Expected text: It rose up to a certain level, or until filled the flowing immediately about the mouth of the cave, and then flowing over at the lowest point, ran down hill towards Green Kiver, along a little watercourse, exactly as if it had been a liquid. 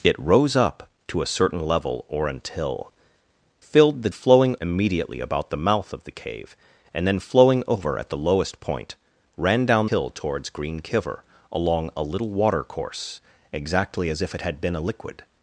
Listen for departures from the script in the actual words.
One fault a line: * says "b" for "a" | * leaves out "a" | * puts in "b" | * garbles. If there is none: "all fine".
all fine